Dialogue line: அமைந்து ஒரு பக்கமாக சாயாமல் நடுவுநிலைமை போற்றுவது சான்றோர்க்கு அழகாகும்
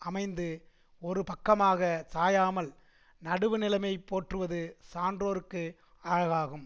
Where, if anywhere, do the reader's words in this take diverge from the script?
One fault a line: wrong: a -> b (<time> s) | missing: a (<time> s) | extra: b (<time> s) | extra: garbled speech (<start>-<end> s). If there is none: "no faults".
no faults